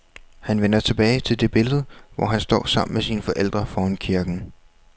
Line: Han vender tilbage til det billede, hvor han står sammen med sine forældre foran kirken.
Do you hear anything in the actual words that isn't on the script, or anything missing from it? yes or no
no